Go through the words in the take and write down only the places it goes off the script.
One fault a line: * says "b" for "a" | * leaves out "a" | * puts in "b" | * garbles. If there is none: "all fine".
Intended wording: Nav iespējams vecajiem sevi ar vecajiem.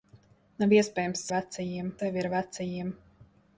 all fine